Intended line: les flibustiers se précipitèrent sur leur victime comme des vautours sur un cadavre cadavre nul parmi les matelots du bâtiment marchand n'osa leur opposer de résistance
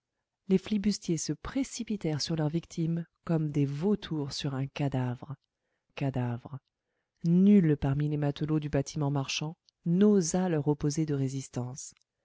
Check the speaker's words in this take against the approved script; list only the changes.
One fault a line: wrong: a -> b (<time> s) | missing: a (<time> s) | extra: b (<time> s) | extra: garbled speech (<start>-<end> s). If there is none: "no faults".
no faults